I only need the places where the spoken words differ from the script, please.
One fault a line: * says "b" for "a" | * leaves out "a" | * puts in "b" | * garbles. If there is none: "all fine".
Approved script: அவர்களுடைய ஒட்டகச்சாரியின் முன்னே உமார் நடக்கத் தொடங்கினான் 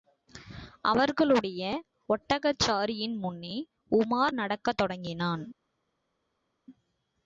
all fine